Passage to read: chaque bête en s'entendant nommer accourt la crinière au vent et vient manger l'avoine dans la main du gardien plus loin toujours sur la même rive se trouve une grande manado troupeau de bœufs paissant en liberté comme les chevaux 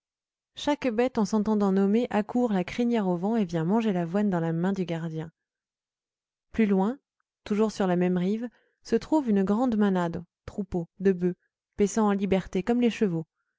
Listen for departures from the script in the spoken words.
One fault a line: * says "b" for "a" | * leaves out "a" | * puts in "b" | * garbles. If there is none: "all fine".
all fine